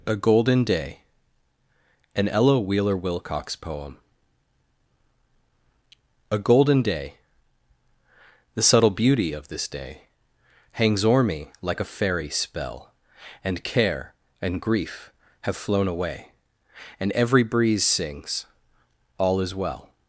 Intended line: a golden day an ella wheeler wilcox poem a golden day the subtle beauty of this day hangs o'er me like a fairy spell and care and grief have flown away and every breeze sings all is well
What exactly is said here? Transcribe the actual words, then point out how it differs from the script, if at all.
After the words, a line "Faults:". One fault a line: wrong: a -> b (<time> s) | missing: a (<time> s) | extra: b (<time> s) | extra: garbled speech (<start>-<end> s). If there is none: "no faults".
a golden day an ella wheeler wilcox poem a golden day the subtle beauty of this day hangs o'er me like a fairy spell and care and grief have flown away and every breeze sings all is well
Faults:
no faults